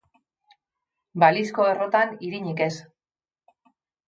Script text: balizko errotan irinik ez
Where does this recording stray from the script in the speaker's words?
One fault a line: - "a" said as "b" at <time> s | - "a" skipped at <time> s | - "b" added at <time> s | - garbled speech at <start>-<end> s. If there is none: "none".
none